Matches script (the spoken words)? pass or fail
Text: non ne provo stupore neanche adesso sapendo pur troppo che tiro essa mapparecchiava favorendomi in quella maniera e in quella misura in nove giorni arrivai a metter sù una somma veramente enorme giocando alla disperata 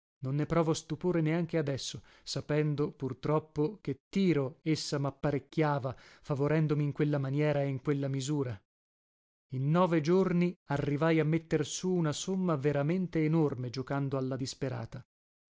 pass